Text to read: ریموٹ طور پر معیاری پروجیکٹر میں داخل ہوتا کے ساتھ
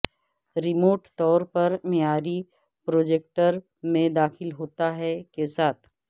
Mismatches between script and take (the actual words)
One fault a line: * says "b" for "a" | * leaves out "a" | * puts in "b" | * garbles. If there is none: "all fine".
* puts in "ہے"